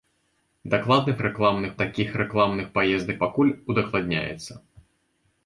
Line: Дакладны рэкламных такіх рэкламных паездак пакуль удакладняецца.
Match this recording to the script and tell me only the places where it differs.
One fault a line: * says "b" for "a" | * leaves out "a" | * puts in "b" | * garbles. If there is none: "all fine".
all fine